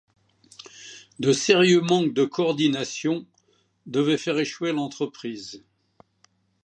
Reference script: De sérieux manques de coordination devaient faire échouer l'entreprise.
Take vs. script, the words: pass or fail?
pass